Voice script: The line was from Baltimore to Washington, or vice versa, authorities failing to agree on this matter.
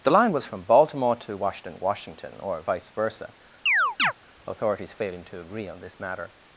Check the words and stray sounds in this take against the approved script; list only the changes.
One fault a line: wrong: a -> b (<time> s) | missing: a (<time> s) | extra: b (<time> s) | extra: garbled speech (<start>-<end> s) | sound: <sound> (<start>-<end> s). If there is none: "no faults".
extra: Washington (1.8 s)
sound: chirp (3.7-4.1 s)